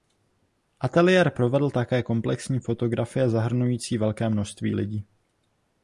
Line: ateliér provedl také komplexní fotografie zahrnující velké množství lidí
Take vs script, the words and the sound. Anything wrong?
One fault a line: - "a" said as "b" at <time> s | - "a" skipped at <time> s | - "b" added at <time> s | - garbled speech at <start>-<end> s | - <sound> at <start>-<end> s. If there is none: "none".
none